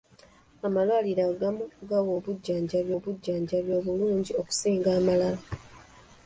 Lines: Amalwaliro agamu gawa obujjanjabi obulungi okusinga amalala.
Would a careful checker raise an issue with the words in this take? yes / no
yes